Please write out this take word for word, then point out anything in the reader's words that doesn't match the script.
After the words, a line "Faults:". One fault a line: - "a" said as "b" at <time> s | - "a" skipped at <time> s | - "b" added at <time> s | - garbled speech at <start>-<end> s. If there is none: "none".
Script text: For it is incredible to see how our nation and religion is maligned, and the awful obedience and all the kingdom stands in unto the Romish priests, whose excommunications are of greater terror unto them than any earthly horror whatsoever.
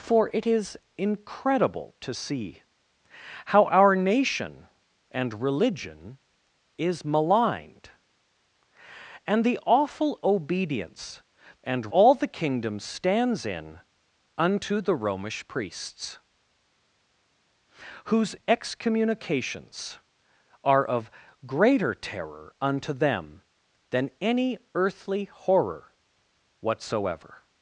For it is incredible to see how our nation and religion is maligned, and the awful obedience and all the kingdom stands in unto the Romish priests, whose excommunications are of greater terror unto them than any earthly horror whatsoever.
Faults:
none